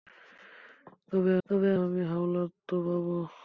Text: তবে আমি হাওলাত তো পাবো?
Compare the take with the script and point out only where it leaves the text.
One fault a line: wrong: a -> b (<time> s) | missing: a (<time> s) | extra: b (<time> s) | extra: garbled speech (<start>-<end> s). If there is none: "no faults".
extra: তবে (1.5 s)